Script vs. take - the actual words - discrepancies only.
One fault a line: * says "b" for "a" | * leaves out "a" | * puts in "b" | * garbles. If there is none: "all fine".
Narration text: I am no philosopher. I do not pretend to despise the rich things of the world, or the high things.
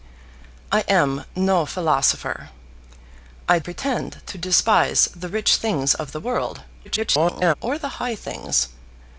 * leaves out "do not"
* garbles